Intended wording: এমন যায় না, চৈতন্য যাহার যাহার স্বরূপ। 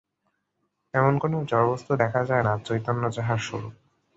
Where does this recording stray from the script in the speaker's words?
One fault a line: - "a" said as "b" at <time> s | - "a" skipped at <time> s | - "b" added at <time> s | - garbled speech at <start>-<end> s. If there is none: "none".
- "কোন জড়বস্তু দেখা" added at 1.2 s
- "যাহার" skipped at 3.4 s